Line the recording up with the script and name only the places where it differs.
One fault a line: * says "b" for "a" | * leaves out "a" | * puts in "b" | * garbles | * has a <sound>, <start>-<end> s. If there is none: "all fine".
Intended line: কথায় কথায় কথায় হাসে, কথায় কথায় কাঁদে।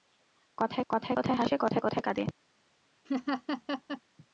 * has a laugh, 3.0-4.0 s